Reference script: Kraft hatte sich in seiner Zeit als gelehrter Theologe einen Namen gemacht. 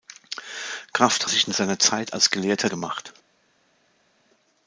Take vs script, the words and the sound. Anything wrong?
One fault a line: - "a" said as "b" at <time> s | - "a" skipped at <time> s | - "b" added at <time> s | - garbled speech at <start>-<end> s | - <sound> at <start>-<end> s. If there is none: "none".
- "hatte" skipped at 1.3 s
- "Theologe einen Namen" skipped at 2.7 s